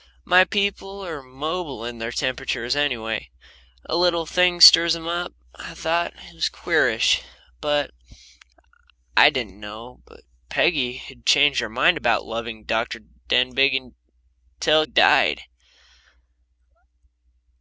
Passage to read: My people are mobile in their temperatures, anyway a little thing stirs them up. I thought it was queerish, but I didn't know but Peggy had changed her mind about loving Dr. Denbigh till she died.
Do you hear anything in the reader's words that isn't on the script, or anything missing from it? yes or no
yes